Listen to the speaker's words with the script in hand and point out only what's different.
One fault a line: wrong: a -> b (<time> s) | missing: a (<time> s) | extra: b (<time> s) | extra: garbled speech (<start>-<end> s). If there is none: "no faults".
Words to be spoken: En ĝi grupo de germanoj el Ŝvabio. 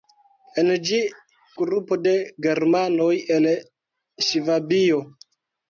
no faults